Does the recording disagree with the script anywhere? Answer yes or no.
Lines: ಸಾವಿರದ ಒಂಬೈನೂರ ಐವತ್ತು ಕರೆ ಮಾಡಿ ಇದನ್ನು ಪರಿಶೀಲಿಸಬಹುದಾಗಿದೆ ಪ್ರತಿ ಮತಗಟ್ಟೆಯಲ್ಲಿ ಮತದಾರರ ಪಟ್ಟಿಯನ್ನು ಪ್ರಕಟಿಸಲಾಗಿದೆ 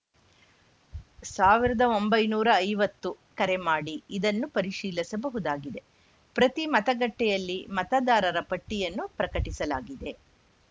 no